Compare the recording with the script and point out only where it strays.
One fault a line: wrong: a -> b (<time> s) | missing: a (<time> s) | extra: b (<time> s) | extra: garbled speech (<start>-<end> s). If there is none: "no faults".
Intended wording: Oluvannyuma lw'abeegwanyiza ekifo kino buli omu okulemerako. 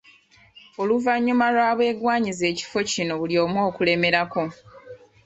no faults